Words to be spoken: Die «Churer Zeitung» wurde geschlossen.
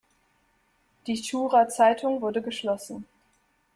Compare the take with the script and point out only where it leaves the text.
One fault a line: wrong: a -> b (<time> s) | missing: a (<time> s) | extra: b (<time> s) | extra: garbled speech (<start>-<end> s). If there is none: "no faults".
no faults